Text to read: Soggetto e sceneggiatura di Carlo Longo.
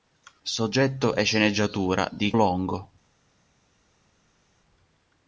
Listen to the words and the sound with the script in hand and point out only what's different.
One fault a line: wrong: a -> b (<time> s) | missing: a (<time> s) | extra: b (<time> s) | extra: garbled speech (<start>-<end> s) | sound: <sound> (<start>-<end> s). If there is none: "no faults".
missing: Carlo (2.3 s)